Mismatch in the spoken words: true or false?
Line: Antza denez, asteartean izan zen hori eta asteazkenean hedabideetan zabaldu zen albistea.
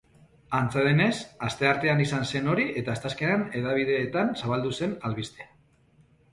false